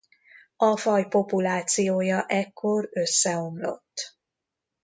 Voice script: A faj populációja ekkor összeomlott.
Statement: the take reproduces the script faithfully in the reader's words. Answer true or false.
true